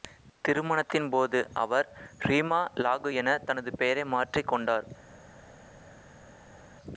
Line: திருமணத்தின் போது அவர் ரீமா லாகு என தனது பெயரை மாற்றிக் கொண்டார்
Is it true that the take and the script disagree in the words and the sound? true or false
false